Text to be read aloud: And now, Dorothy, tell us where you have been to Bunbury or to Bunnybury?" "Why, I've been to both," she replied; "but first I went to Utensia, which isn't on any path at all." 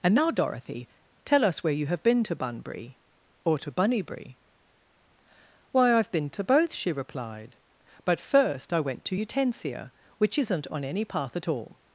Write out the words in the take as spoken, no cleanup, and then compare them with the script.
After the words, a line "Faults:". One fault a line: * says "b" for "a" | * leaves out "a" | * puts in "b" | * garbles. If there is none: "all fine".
And now, Dorothy, tell us where you have been to Bunbury or to Bunnybury?" "Why, I've been to both," she replied; "but first I went to Utensia, which isn't on any path at all."
Faults:
all fine